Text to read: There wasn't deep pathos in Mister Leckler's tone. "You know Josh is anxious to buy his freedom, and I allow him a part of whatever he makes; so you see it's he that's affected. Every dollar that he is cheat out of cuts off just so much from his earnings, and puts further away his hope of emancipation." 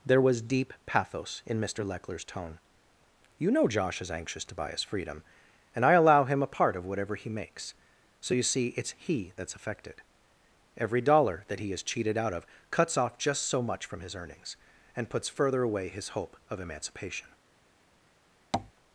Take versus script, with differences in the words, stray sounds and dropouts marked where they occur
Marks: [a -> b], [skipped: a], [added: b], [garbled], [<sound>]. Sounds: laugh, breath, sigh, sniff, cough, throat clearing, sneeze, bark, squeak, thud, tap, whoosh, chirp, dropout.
There [wasn't -> was] deep pathos in Mister Leckler's tone. "You know Josh is anxious to buy his freedom, and I allow him a part of whatever he makes; so you see it's he that's affected. Every dollar that he is [cheat -> cheated] out of cuts off just so much from his earnings, and puts further away his hope of emancipation." [tap]